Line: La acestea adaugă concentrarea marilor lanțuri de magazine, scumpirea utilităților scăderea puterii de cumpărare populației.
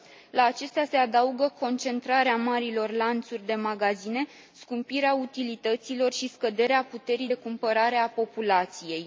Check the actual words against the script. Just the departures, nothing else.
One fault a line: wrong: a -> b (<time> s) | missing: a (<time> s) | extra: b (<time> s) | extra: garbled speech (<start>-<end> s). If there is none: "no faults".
extra: se (0.8 s)
extra: și (6.1 s)
extra: a (8.0 s)